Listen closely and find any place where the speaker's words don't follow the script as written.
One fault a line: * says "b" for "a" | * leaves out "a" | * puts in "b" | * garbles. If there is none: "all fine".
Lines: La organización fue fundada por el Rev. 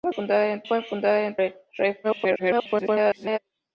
* says "fundada" for "organización"
* leaves out "por"
* garbles